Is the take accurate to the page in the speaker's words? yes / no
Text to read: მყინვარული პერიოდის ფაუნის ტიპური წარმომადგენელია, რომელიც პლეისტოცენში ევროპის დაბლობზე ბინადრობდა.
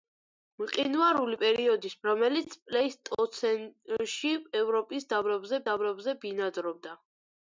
no